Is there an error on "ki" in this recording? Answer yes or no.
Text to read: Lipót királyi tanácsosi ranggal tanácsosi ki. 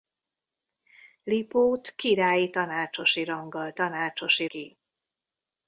no